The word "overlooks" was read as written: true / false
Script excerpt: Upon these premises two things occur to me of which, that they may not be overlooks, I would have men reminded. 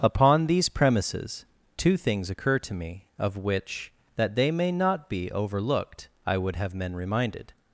false